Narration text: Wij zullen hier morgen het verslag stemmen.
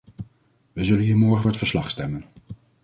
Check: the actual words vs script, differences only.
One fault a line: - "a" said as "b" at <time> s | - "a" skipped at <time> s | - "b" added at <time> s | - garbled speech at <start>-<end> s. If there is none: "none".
none